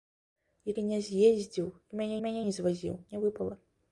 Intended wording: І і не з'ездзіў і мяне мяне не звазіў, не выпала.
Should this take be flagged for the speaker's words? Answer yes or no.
no